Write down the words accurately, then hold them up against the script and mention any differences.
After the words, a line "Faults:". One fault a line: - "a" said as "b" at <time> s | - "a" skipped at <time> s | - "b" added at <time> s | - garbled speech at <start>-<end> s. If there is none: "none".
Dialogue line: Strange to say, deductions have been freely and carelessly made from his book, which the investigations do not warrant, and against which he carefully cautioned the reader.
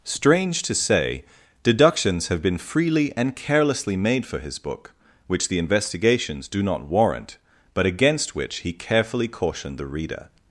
Strange to say, deductions have been freely and carelessly made for his book, which the investigations do not warrant, but against which he carefully cautioned the reader.
Faults:
- "from" said as "for" at 4.2 s
- "and" said as "but" at 7.8 s